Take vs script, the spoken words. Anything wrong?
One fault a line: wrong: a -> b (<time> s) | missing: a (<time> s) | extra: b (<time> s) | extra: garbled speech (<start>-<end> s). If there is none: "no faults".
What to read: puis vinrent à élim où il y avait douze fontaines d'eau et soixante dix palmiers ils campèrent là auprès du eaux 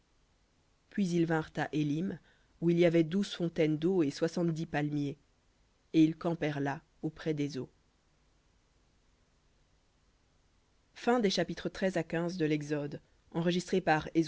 extra: ils (1.1 s)
extra: et (5.9 s)
wrong: du -> des (7.3 s)